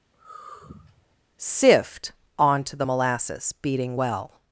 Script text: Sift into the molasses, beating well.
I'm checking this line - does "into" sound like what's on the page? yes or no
no